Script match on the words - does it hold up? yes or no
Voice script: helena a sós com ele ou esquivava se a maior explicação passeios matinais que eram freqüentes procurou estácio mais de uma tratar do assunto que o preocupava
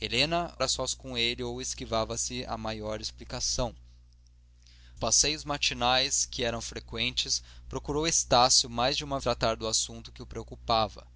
yes